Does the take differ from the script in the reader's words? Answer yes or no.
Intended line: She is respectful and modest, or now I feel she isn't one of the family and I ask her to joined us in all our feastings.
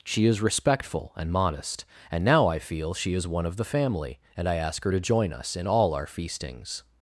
yes